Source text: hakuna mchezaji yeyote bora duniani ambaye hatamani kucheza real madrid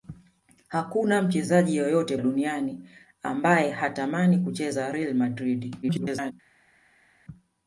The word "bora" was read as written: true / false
false